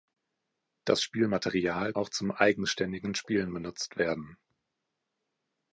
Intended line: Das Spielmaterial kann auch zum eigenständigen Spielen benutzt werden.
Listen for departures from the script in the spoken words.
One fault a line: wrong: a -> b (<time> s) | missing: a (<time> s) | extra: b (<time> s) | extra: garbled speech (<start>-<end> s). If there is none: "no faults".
missing: kann (1.9 s)